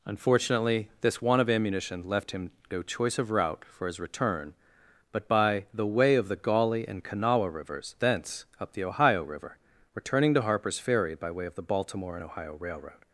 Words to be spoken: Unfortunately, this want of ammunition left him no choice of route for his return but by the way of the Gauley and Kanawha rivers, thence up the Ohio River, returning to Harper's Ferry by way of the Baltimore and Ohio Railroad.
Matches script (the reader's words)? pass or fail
pass